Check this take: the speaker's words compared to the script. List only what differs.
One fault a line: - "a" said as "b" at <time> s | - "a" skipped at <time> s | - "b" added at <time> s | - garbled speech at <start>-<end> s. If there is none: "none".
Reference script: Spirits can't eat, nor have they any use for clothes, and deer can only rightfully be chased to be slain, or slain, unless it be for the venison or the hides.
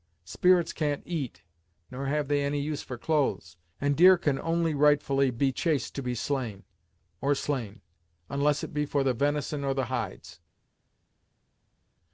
none